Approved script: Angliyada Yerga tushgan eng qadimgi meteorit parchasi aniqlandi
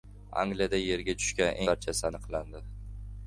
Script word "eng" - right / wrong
wrong